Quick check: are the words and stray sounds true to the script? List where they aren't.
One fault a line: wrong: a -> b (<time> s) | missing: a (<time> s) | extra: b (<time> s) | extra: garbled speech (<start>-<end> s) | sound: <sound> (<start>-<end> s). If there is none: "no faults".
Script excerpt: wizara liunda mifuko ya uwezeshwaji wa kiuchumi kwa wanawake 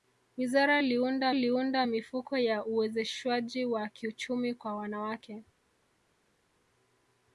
extra: liunda (1.3 s)